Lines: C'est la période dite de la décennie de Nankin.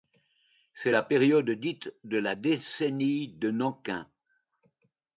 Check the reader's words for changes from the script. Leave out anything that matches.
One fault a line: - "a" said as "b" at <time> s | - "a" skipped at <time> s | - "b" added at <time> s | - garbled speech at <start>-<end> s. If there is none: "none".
none